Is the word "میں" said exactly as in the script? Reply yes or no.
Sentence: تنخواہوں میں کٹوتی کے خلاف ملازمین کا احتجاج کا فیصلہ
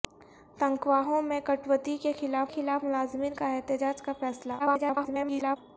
yes